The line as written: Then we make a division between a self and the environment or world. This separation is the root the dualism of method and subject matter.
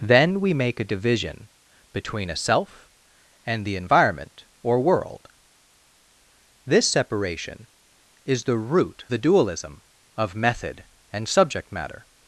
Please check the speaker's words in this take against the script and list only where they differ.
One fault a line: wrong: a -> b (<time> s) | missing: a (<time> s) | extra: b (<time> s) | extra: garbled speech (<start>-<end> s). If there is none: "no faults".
no faults